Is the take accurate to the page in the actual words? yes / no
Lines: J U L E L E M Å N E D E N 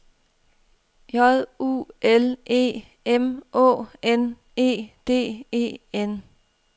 no